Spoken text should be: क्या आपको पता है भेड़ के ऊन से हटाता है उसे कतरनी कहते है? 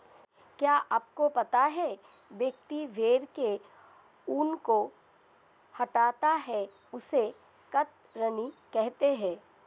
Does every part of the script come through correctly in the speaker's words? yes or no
no